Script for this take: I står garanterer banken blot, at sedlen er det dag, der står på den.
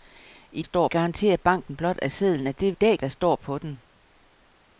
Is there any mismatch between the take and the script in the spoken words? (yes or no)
no